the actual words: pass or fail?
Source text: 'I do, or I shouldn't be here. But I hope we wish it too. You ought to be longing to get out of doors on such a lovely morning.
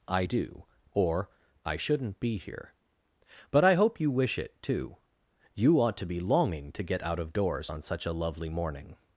fail